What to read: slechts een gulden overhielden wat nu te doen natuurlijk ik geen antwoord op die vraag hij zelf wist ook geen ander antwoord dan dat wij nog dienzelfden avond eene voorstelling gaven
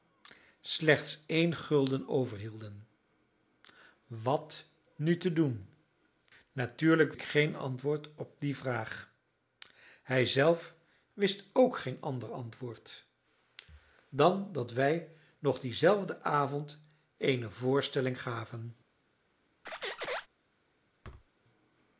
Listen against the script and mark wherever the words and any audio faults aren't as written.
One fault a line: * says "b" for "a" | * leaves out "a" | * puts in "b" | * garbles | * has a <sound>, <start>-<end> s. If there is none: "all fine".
* has a squeak, 19.6-20.3 s
* has a thud, 21.0-21.3 s